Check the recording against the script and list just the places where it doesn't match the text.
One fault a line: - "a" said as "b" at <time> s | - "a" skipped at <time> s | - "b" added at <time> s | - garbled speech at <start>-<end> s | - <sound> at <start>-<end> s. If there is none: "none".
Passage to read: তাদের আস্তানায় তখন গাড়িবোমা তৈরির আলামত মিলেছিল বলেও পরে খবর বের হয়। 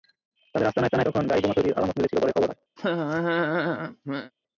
- "আস্তানায়" added at 0.9 s
- "বলেও" skipped at 2.2 s
- "বের" skipped at 2.5 s
- laugh at 2.8-4.3 s